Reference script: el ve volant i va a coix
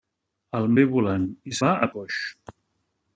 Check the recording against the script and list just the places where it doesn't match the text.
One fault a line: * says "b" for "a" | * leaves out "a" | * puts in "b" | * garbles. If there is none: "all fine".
all fine